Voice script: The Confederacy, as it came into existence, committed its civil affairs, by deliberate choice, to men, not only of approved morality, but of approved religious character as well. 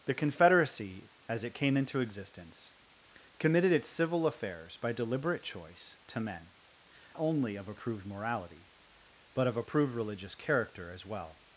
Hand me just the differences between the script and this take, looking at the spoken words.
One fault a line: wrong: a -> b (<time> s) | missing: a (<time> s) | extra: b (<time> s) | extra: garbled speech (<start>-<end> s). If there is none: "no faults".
missing: not (6.5 s)